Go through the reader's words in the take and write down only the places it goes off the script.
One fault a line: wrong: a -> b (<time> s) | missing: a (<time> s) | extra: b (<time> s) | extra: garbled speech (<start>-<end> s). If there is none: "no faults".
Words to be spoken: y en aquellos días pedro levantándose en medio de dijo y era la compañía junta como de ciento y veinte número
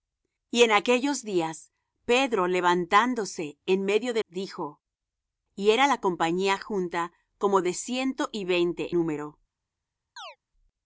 no faults